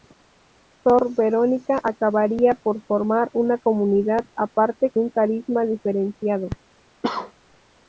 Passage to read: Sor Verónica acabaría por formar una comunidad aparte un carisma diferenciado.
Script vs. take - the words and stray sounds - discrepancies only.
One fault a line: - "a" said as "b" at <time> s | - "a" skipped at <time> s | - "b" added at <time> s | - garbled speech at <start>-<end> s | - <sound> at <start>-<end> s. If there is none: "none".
- cough at 7.0-7.3 s